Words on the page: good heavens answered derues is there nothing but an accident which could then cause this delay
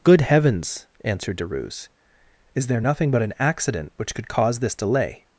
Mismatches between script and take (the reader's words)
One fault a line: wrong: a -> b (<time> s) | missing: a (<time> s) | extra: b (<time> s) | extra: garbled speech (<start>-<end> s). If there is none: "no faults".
missing: then (4.3 s)